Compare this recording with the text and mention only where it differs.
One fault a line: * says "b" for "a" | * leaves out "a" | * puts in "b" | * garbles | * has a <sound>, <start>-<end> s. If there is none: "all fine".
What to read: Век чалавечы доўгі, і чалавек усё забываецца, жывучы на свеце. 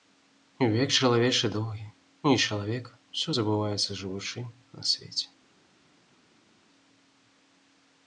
all fine